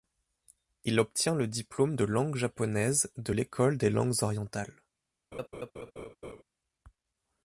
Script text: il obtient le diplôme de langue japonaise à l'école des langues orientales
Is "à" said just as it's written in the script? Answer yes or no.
no